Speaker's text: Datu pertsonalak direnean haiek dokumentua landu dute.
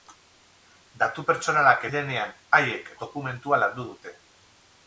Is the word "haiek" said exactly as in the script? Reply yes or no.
yes